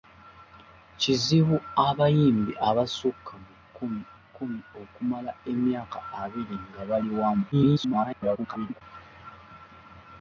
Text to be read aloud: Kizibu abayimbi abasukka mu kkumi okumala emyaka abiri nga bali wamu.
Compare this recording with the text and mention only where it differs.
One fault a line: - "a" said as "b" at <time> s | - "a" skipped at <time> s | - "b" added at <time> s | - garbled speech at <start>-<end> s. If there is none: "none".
- "kkumi" added at 4.2 s
- garbled speech at 7.5-8.8 s